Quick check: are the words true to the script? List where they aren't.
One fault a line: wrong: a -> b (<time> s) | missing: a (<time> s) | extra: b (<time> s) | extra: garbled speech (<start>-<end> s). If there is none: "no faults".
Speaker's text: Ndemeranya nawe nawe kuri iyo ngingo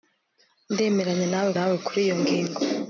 no faults